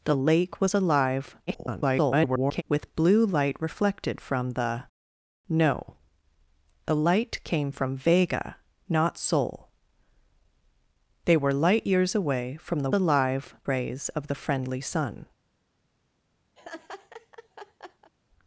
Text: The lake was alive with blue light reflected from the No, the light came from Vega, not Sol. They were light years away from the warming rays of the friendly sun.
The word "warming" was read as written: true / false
false